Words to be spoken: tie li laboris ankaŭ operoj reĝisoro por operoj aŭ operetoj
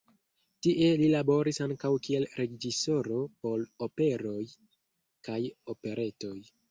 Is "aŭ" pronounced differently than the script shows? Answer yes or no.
yes